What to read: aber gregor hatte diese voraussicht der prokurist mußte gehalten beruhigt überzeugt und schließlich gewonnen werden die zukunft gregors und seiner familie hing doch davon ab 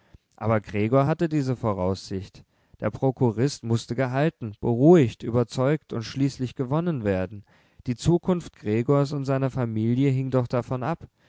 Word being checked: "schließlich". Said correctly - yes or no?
yes